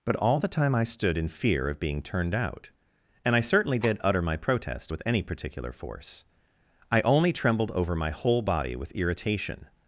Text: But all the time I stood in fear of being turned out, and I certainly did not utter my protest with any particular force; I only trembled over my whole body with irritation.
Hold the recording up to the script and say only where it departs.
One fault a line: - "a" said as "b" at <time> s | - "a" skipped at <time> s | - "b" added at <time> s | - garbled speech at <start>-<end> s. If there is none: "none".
- "not" skipped at 4.0 s